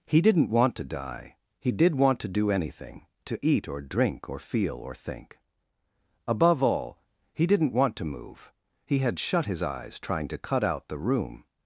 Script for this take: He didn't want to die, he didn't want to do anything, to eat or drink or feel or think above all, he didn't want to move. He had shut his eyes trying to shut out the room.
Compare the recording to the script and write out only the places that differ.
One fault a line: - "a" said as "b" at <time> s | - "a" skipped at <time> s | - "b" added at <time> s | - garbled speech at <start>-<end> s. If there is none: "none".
- "didn't" said as "did" at 1.7 s
- "shut" said as "cut" at 10.4 s